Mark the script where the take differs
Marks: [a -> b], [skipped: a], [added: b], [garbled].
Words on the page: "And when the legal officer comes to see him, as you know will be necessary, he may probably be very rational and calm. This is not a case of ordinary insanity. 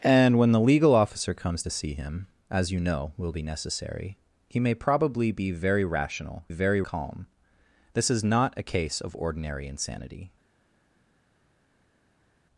"And when the legal officer comes to see him, as you know will be necessary, he may probably be very rational [and -> very] calm. This is not a case of ordinary insanity.